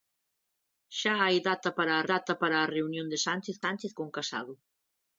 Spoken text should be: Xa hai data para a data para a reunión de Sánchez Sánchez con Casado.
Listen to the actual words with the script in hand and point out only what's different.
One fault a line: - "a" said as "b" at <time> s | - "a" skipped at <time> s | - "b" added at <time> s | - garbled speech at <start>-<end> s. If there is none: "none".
none